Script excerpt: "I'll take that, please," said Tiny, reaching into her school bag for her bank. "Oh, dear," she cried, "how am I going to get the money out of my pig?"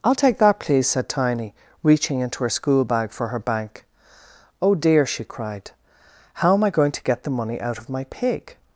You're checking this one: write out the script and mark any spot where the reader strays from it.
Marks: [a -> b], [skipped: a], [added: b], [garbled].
"I'll take that, please," said Tiny, reaching into her school bag for her bank. "Oh, dear," she cried, "how am I going to get the money out of my pig?"